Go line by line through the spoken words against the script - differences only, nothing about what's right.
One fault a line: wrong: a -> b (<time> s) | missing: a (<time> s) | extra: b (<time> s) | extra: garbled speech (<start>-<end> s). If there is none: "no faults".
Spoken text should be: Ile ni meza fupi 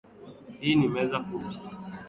wrong: Ile -> Hii (0.6 s)